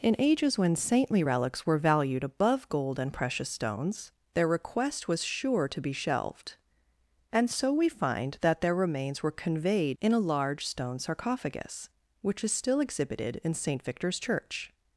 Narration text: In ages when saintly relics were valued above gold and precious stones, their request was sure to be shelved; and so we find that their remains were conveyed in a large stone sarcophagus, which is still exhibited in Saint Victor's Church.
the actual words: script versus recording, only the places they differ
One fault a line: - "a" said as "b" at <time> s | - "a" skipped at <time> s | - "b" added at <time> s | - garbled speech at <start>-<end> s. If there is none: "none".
none